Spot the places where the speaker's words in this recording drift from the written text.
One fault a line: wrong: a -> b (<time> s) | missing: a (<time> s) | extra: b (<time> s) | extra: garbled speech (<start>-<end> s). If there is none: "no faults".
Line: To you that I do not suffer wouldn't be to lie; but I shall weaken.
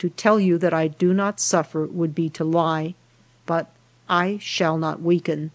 extra: tell (0.1 s)
wrong: wouldn't -> would (1.9 s)
extra: not (4.8 s)